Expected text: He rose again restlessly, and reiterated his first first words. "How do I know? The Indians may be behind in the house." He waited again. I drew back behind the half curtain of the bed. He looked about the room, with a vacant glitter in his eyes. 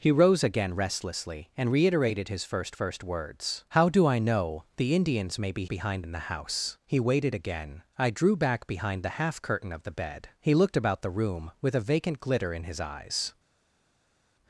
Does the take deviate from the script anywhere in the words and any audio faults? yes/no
no